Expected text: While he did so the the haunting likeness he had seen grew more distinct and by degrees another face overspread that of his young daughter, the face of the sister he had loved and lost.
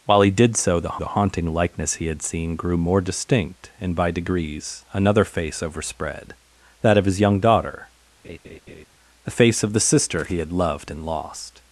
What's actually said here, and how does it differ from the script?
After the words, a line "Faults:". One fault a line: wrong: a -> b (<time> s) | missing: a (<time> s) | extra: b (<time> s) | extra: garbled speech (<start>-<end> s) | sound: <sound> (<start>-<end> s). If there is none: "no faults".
While he did so the the haunting likeness he had seen grew more distinct and by degrees another face overspread that of his young daughter, the face of the sister he had loved and lost.
Faults:
sound: laugh (8.2-8.9 s)